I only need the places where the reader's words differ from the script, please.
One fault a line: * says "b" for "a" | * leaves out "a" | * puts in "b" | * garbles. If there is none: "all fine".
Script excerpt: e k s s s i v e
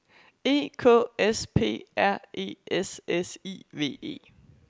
* puts in "p r e"